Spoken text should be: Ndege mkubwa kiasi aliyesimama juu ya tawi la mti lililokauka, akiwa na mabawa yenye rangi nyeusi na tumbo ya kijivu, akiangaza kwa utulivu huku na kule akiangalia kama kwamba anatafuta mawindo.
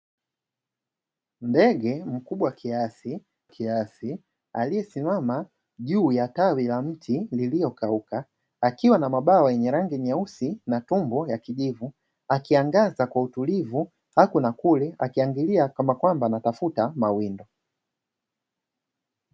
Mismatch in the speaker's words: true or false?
true